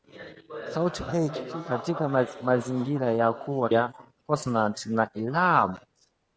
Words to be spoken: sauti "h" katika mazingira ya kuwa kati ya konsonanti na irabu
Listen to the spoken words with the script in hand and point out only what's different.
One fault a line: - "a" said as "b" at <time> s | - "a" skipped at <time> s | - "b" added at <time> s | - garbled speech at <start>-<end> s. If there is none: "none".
- "kati" skipped at 3.7 s